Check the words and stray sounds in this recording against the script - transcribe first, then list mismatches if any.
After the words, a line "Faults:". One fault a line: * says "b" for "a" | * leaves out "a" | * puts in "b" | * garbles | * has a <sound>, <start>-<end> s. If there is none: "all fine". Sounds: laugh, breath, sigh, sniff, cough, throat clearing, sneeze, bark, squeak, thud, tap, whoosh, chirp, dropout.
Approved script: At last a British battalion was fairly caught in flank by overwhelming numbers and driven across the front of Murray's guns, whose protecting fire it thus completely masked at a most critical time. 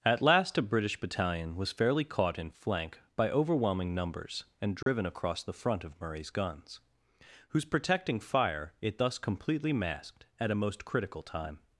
At last a British battalion was fairly caught in flank by overwhelming numbers and driven across the front of Murray's guns, whose protecting fire it thus completely masked at a most critical time.
Faults:
* has a dropout, 4.8-4.9 s